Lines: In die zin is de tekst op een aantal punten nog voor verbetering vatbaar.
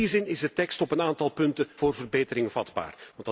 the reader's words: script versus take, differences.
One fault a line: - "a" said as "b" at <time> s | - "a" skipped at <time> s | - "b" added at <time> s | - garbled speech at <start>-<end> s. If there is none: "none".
- "nog" skipped at 1.7 s